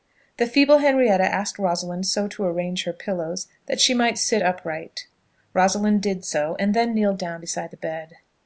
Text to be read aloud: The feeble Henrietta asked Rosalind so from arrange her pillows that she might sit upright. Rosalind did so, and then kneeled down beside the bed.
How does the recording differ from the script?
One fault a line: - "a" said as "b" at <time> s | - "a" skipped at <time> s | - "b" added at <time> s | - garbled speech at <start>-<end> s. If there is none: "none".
- "from" said as "to" at 2.3 s